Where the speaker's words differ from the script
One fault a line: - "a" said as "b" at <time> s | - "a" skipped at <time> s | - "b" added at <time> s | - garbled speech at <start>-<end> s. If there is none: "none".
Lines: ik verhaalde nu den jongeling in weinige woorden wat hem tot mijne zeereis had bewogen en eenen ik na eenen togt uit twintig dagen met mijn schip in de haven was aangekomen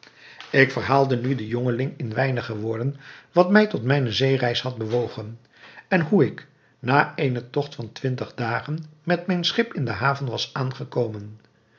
- "hem" said as "mij" at 3.5 s
- "eenen" said as "hoe" at 6.0 s
- "uit" said as "van" at 7.7 s